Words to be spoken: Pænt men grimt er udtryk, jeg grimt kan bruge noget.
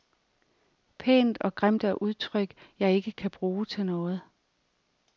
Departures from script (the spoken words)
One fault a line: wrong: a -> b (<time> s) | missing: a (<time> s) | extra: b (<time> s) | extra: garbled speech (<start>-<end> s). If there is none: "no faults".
wrong: men -> og (1.4 s)
wrong: grimt -> ikke (2.9 s)
extra: til (3.7 s)